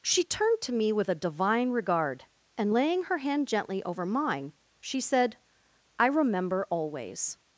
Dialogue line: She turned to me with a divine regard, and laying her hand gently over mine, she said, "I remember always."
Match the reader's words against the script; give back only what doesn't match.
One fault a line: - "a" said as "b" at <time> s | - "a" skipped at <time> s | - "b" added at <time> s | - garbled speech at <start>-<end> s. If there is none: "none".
none